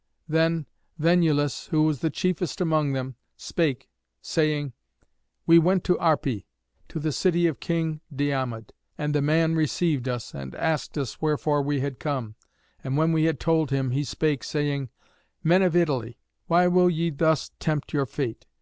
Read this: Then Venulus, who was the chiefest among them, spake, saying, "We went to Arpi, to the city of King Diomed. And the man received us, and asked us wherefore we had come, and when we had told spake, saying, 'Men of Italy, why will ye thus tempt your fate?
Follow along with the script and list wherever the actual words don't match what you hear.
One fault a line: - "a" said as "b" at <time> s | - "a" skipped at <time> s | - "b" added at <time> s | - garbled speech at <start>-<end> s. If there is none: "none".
- "him he" added at 13.7 s